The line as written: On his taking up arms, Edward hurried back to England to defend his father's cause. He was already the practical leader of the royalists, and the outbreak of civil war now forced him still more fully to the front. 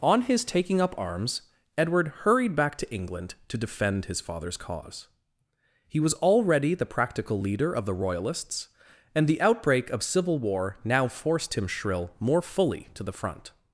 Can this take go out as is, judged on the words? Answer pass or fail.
fail